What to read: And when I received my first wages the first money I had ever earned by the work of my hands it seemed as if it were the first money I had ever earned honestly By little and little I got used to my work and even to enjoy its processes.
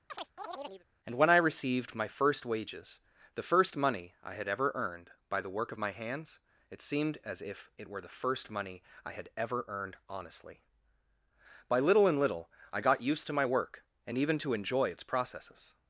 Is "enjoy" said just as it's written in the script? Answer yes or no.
yes